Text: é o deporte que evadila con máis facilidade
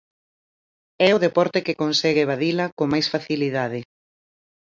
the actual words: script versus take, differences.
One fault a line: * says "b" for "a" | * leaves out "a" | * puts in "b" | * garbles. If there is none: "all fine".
* puts in "consegue"